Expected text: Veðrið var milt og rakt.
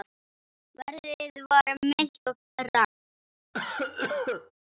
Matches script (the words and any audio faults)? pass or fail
fail